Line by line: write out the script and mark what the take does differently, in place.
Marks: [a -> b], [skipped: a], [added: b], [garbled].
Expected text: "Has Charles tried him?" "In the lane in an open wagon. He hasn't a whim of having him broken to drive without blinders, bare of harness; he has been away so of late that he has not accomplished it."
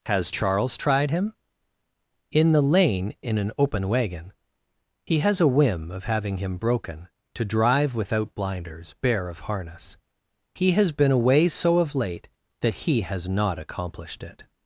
"Has Charles tried him?" "In the lane in an open wagon. He [hasn't -> has] a whim of having him broken to drive without blinders, bare of harness; he has been away so of late that he has not accomplished it."